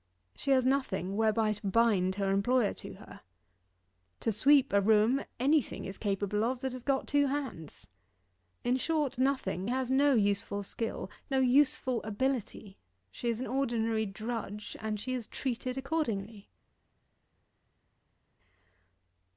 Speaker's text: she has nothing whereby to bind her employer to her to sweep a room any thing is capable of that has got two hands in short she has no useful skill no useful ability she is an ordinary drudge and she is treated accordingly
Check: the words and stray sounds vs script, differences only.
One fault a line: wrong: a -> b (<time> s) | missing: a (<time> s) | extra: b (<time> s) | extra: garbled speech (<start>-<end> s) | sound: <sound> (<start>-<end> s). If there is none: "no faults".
wrong: she -> nothing (9.2 s)